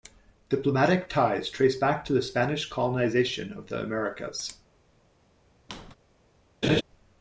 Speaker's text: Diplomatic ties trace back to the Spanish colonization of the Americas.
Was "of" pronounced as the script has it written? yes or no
yes